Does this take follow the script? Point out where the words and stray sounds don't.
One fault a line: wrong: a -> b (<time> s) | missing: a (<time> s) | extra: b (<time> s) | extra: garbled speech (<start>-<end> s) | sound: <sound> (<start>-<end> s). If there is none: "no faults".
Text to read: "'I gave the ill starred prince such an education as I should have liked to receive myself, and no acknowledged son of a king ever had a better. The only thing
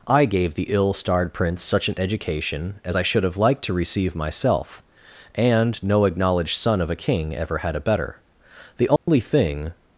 sound: dropout (9.0-9.1 s)